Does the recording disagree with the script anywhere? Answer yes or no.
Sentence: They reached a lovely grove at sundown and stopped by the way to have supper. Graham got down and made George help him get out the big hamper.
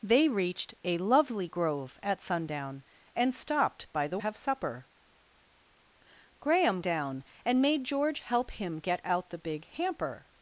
yes